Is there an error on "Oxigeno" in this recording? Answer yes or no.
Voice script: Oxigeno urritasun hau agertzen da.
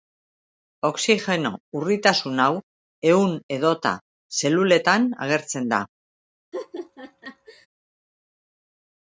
no